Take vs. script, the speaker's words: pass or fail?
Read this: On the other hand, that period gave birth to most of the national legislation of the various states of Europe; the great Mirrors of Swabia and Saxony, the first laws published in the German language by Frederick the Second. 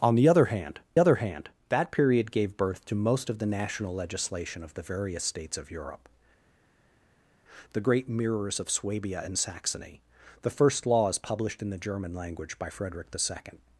fail